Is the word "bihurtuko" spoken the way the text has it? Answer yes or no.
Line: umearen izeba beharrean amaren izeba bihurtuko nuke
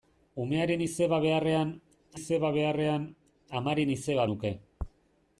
no